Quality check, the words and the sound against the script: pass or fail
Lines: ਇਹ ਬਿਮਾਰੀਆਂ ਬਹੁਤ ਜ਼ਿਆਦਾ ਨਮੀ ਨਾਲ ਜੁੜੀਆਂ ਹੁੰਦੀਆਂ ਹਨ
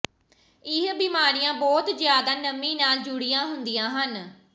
pass